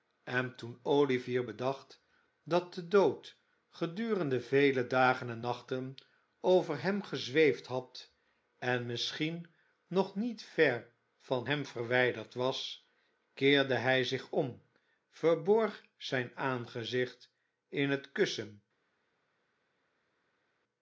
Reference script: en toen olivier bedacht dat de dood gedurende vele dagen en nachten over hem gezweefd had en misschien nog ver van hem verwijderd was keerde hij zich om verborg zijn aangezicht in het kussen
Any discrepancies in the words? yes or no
yes